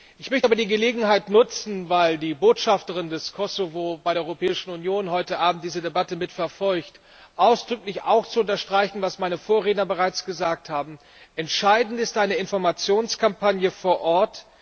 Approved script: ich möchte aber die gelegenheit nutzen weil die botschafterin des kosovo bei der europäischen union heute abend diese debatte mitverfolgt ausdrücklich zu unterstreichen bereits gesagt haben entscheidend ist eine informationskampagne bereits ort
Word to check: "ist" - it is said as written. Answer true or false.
true